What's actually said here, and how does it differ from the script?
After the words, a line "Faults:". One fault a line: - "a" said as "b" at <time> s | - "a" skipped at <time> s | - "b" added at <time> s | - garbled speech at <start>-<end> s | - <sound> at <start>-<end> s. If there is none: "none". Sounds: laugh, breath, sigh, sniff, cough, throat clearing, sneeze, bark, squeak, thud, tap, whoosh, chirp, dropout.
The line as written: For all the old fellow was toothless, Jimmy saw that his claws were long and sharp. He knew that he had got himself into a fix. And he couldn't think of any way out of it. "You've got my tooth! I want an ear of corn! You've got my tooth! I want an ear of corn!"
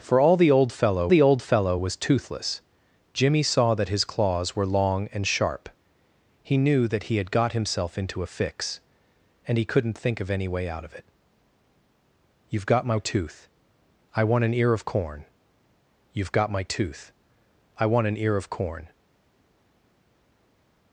For all the old fellow the old fellow was toothless, Jimmy saw that his claws were long and sharp. He knew that he had got himself into a fix. And he couldn't think of any way out of it. "You've got my tooth! I want an ear of corn! You've got my tooth! I want an ear of corn!"
Faults:
- "the old fellow" added at 1.1 s